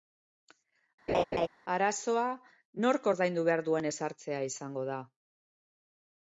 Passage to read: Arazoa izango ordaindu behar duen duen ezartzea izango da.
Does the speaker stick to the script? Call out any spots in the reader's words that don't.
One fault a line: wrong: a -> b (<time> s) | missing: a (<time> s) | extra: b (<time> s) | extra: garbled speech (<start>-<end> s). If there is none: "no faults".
wrong: izango -> nork (2.9 s)
missing: duen (3.9 s)